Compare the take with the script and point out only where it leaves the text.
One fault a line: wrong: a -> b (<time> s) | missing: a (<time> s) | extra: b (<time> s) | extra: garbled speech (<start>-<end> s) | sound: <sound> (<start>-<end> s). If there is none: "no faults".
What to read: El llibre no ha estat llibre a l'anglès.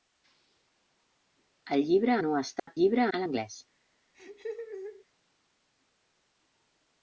sound: dropout (2.6-2.7 s)
sound: laugh (4.1-5.1 s)